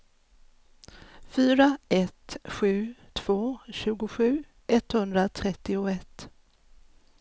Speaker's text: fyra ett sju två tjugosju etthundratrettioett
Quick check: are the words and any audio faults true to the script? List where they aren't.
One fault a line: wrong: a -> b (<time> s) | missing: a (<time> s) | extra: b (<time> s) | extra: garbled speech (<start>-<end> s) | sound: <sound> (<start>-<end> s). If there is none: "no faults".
no faults